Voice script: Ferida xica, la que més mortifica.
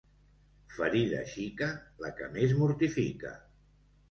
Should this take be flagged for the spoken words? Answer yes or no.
no